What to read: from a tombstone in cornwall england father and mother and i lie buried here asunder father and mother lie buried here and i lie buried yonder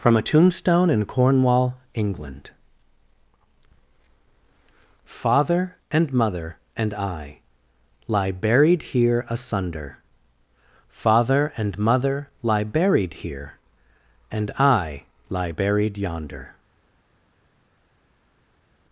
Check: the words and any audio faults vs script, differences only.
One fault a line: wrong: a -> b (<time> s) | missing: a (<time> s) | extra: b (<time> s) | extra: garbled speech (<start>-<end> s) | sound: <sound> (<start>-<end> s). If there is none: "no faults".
no faults